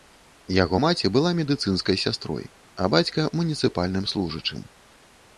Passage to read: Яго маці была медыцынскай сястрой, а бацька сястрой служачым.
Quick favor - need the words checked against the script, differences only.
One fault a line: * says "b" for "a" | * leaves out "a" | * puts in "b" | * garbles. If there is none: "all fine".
* says "муніцыпальным" for "сястрой"